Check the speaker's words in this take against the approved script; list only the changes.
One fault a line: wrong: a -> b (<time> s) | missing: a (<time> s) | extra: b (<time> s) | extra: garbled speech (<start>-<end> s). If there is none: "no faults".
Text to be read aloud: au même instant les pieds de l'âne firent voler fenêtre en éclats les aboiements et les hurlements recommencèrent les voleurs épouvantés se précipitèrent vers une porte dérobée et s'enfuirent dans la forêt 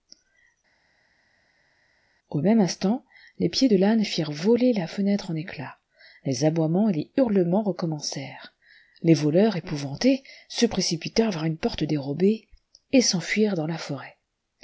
extra: la (4.7 s)